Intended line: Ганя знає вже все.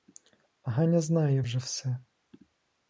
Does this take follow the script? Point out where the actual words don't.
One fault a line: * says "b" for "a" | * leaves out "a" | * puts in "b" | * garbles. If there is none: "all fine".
all fine